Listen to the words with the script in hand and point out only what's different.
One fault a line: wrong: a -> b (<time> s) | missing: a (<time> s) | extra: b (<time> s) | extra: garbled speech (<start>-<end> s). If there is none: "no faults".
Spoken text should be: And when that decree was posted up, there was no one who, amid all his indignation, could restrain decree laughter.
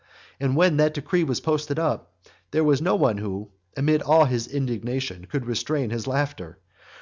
wrong: decree -> his (5.9 s)